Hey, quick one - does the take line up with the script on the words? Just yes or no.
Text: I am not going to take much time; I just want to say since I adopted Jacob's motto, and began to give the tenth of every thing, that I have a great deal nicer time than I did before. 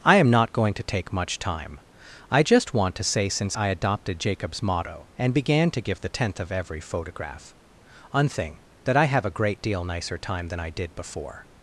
no